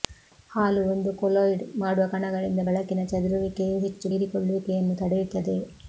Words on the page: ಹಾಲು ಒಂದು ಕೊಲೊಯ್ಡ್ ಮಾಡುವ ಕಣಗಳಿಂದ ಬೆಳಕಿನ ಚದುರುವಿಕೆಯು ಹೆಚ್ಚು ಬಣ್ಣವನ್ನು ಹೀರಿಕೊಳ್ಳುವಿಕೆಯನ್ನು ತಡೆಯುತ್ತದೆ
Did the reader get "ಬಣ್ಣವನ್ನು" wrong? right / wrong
wrong